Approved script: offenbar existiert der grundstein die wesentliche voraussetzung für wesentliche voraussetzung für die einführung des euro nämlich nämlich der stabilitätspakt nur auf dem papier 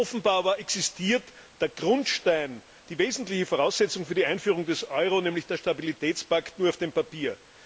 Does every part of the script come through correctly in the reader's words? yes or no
no